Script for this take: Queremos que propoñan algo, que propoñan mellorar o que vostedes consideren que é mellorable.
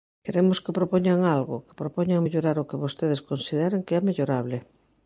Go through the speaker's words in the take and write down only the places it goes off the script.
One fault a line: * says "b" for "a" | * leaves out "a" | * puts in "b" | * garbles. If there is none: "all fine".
all fine